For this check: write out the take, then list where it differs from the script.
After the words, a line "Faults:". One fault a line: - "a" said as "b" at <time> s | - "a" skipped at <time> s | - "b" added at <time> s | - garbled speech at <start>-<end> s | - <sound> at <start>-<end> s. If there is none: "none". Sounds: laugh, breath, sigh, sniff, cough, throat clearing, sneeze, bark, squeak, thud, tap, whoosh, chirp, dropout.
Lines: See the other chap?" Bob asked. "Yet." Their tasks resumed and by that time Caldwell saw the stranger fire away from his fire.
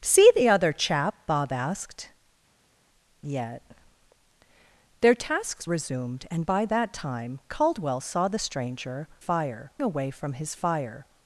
See the other chap?" Bob asked. "Yet." Their tasks resumed and by that time Caldwell saw the stranger fire away from his fire.
Faults:
none